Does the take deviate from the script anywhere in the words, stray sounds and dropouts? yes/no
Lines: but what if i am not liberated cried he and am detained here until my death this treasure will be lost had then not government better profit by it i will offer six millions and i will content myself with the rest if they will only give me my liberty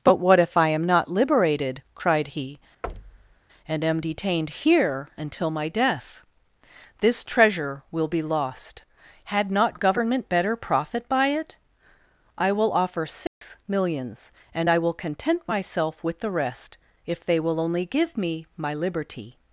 yes